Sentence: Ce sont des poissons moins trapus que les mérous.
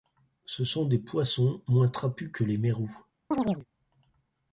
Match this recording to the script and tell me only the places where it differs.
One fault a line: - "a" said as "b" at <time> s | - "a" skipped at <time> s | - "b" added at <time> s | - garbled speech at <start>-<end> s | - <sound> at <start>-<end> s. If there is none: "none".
- chirp at 3.3-3.7 s